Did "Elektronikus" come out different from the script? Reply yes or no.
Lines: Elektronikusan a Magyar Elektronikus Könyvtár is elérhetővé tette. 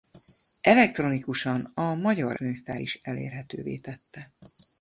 yes